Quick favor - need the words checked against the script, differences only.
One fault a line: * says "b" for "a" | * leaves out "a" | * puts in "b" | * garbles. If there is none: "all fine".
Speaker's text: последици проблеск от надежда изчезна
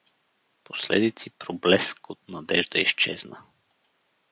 all fine